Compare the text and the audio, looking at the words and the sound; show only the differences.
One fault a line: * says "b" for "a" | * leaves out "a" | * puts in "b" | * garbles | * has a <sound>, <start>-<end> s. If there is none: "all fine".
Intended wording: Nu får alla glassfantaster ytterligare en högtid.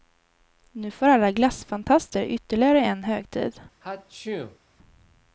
* has a sneeze, 3.8-4.6 s